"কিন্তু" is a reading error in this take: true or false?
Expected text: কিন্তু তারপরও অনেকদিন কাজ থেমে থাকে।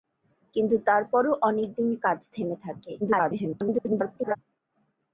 false